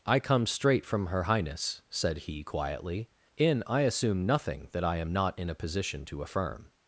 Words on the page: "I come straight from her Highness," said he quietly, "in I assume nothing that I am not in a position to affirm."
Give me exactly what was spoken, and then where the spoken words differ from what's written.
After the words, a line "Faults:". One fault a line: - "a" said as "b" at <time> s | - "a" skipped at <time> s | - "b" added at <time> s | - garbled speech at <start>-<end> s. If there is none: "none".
"I come straight from her Highness," said he quietly, "in I assume nothing that I am not in a position to affirm."
Faults:
none